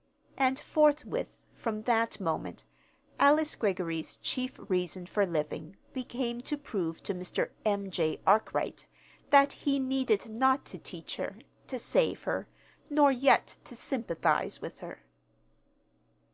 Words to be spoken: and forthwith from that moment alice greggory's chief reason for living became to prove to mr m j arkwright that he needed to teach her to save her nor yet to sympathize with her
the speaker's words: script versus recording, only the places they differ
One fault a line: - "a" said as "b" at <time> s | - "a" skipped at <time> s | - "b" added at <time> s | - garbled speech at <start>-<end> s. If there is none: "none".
- "not" added at 10.3 s